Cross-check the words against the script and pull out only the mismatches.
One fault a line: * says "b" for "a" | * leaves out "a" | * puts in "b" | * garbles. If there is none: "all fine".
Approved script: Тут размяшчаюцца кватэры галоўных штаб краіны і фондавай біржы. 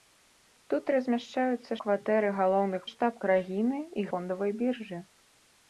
all fine